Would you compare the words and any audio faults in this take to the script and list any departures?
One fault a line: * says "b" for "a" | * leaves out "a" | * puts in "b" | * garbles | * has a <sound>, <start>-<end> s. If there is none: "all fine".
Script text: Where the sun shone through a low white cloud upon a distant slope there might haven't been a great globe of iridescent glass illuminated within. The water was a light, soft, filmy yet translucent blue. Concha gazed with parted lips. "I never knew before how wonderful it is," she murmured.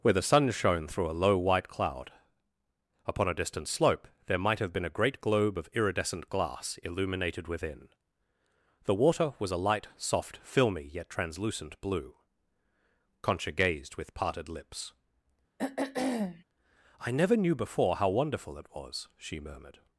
* says "have" for "haven't"
* has a throat clearing, 15.6-16.4 s
* says "was" for "is"